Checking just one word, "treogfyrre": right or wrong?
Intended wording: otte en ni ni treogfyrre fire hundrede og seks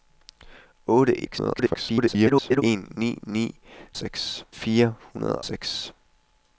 wrong